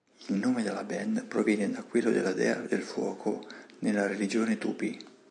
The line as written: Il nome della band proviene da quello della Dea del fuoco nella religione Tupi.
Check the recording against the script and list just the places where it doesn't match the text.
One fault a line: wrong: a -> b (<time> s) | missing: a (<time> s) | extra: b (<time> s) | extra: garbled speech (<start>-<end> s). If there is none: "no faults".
no faults